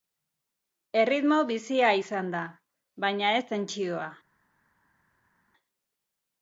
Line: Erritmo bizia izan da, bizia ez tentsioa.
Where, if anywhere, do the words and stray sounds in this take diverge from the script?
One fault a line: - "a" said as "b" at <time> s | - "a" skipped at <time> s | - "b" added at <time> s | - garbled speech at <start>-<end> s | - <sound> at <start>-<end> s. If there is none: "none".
- "bizia" said as "baina" at 3.1 s